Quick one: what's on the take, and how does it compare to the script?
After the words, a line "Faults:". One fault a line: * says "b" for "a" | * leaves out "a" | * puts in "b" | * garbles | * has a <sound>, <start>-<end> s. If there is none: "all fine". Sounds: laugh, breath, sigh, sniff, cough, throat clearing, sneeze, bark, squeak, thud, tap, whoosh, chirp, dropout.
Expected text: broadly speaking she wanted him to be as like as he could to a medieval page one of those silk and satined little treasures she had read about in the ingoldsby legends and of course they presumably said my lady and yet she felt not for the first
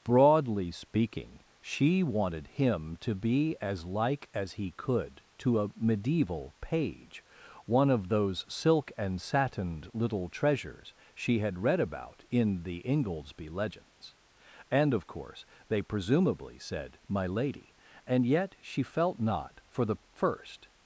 broadly speaking she wanted him to be as like as he could to a medieval page one of those silk and satined little treasures she had read about in the ingoldsby legends and of course they presumably said my lady and yet she felt not for the first
Faults:
all fine